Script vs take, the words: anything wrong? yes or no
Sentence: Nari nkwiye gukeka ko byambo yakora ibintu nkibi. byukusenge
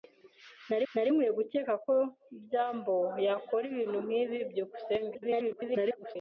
yes